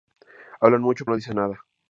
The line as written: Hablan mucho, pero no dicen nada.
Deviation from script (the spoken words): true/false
true